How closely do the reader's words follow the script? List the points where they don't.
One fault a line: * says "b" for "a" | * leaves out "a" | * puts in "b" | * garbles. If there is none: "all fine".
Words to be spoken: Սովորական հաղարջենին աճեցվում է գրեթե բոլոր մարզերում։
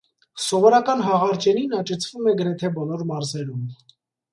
all fine